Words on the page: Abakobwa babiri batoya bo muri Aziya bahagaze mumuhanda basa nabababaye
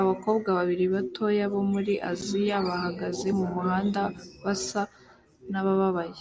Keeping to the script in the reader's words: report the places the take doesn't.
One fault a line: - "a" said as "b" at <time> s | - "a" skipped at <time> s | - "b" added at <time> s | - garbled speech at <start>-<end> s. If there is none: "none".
none